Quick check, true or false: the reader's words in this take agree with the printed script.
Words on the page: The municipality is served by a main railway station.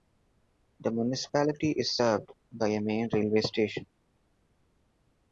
true